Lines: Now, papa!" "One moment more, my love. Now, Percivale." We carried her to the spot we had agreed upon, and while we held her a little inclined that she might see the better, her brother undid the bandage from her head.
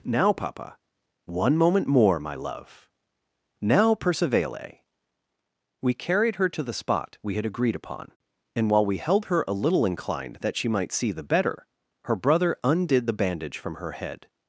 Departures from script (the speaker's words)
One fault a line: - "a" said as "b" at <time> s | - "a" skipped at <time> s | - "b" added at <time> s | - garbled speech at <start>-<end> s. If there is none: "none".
none